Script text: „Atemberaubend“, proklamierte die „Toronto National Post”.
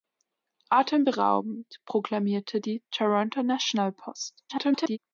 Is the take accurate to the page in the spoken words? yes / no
no